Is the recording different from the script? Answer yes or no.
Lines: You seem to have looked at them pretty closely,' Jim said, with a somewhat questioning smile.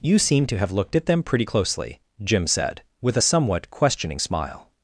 no